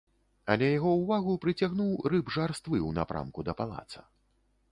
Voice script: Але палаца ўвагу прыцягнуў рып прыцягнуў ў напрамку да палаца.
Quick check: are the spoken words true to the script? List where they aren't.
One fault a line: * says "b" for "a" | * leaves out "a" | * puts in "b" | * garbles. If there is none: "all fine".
* says "яго" for "палаца"
* says "жарствы" for "прыцягнуў"